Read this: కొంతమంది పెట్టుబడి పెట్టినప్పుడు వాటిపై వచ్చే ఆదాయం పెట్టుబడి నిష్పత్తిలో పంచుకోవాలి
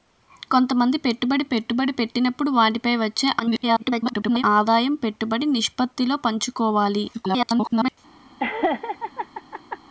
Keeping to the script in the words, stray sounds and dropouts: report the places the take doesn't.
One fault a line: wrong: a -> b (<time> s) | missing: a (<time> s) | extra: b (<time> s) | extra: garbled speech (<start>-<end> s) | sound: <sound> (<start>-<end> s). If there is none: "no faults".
extra: పెట్టుబడి (1.4 s)
extra: garbled speech (3.4-4.4 s)
extra: garbled speech (7.1-8.0 s)
sound: laugh (8.4-9.8 s)